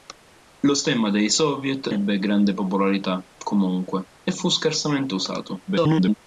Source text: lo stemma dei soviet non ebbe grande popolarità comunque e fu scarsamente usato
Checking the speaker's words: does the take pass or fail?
fail